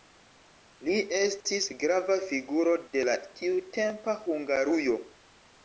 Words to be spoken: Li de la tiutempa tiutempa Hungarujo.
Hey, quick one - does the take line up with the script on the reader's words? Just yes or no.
no